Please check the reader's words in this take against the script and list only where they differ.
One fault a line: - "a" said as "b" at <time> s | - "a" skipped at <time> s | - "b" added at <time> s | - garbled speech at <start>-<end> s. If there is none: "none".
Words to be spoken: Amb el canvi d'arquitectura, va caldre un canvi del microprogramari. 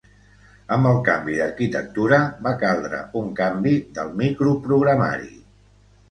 none